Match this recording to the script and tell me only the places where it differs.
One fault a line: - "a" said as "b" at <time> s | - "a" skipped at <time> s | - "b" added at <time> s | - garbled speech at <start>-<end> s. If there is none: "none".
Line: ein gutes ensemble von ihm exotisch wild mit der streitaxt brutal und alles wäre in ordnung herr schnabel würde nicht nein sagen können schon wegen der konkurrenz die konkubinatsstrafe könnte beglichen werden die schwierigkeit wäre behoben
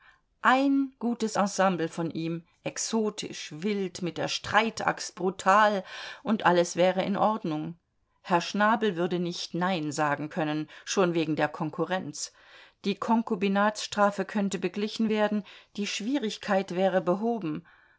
none